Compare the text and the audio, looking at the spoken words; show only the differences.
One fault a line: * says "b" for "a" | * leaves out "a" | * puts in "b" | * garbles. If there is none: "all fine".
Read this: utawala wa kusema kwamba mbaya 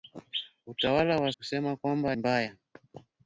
all fine